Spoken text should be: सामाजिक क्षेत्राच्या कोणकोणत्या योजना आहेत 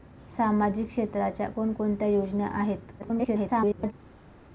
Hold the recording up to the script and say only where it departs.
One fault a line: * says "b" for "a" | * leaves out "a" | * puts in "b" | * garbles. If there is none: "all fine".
* garbles